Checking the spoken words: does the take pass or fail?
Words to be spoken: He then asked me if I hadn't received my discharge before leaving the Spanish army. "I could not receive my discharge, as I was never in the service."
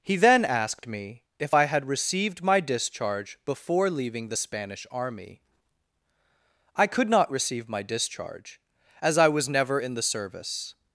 fail